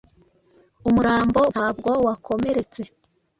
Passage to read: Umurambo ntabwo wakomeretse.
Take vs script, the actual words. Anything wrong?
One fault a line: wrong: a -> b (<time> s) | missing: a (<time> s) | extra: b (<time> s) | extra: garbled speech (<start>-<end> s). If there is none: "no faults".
no faults